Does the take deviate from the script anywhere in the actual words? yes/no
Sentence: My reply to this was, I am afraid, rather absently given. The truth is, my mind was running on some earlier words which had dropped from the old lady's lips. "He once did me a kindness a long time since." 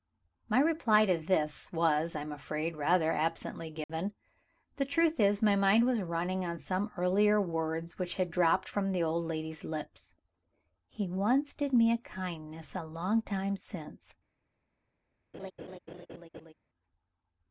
no